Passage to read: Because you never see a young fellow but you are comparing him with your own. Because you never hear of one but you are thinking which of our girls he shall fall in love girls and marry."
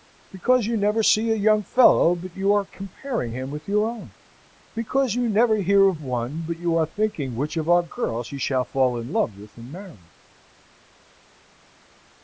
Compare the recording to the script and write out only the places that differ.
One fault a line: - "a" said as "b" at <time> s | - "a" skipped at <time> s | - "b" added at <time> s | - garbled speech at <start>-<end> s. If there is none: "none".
- "girls" said as "with" at 9.4 s